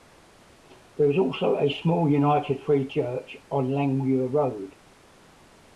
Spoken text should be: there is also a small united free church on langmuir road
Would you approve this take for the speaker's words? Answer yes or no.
yes